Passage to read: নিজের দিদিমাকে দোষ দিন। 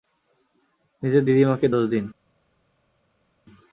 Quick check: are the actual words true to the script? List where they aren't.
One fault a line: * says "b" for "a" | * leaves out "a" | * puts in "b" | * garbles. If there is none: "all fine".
all fine